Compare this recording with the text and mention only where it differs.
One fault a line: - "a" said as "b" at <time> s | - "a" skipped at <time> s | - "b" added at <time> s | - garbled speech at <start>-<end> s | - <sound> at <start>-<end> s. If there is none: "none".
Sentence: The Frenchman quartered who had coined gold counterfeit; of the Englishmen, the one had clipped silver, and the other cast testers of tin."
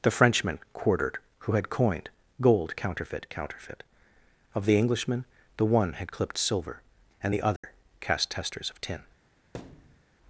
- "counterfeit" added at 3.3 s
- dropout at 7.6-7.6 s
- thud at 9.5-10.0 s